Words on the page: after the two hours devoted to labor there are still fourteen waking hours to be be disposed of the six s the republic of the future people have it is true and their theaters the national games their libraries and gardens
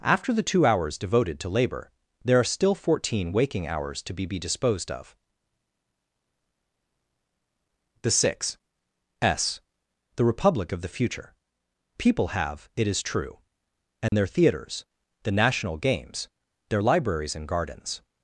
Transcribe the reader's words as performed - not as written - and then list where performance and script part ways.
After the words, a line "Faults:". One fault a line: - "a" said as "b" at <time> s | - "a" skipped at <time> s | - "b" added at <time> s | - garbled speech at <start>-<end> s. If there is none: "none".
after the two hours devoted to labor there are still fourteen waking hours to be be disposed of the six s the republic of the future people have it is true and their theaters the national games their libraries and gardens
Faults:
none